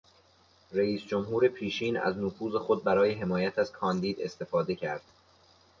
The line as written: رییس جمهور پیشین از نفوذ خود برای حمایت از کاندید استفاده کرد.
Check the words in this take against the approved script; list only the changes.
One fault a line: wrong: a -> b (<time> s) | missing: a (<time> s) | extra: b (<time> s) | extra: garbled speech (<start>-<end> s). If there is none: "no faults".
no faults